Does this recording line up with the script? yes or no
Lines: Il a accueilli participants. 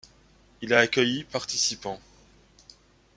yes